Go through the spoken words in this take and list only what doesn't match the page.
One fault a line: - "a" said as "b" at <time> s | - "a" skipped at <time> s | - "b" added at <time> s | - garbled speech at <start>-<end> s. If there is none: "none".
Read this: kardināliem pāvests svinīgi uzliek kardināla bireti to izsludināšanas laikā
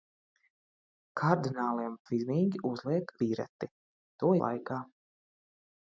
- "pāvests" skipped at 2.0 s
- "kardināla" skipped at 3.1 s
- "izsludināšanas" skipped at 4.3 s